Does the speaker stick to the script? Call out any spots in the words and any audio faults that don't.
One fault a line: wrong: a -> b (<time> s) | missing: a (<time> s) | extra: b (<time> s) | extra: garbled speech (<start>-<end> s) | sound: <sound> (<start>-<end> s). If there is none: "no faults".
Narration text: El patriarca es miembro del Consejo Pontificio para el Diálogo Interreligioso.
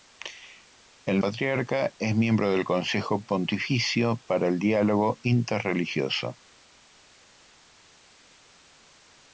no faults